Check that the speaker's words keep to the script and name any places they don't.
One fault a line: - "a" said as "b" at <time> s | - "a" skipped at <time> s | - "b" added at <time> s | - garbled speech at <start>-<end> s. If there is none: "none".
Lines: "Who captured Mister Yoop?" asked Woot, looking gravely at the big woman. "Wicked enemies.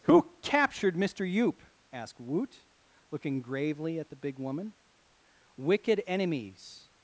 none